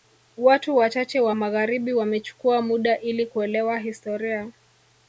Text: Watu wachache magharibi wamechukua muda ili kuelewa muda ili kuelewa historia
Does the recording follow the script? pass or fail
fail